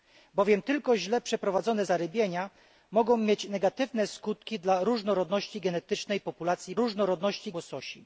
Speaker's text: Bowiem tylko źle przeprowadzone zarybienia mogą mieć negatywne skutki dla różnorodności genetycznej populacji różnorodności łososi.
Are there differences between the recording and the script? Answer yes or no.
no